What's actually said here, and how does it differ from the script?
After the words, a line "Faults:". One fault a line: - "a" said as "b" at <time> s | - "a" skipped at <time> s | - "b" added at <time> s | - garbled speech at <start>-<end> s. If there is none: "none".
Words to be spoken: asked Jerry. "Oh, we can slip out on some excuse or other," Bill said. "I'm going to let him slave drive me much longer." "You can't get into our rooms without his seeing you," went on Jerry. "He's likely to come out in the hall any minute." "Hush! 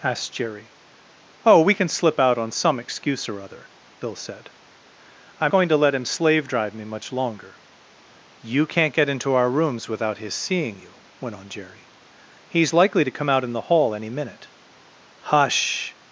asked Jerry. "Oh, we can slip out on some excuse or other," Bill said. "I'm going to let him slave drive me much longer." "You can't get into our rooms without his seeing you," went on Jerry. "He's likely to come out in the hall any minute." "Hush!
Faults:
none